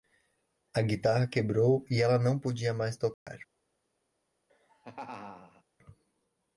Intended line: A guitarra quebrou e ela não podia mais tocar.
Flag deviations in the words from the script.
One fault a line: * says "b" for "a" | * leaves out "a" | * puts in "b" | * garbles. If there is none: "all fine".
all fine